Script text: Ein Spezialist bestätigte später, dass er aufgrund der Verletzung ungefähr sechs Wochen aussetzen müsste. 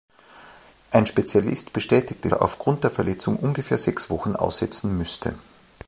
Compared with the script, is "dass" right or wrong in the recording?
wrong